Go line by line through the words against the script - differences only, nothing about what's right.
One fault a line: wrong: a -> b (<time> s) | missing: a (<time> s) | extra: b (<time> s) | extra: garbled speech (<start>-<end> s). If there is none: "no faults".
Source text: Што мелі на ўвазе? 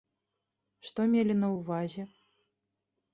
no faults